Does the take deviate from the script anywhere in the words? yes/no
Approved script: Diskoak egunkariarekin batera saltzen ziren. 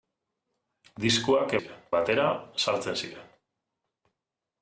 yes